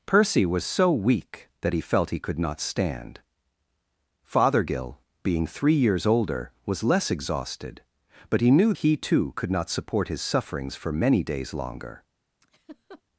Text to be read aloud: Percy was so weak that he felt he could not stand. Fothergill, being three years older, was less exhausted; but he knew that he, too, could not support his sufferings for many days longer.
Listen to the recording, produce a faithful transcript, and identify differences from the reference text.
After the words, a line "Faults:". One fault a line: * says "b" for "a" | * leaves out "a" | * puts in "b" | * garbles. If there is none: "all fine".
Percy was so weak that he felt he could not stand. Fothergill, being three years older, was less exhausted; but he knew he, too, could not support his sufferings for many days longer.
Faults:
* leaves out "that"